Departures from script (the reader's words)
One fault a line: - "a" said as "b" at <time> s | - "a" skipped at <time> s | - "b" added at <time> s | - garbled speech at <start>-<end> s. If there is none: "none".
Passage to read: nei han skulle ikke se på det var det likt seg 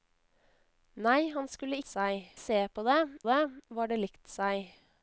- "ikke" said as "seg" at 1.9 s
- "det" added at 3.3 s